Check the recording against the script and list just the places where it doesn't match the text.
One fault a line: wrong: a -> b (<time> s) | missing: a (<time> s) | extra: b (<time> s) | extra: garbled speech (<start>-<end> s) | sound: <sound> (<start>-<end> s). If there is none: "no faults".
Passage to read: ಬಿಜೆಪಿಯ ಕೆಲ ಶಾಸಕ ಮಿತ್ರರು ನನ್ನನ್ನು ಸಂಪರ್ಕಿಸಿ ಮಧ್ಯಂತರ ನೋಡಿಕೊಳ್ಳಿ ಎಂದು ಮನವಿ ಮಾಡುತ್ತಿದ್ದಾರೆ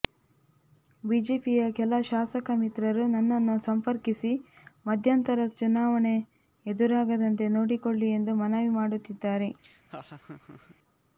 extra: ಚುನಾವಣೆ ಎದುರಾಗದಂತೆ (5.5 s)
sound: laugh (9.6-10.8 s)